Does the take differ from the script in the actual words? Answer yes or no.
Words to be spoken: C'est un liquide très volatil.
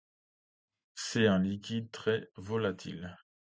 no